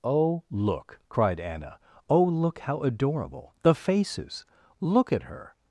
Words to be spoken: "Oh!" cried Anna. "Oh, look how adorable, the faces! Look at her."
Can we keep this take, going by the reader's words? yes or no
no